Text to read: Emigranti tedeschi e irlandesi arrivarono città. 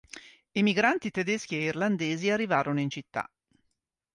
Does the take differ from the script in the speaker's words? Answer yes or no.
yes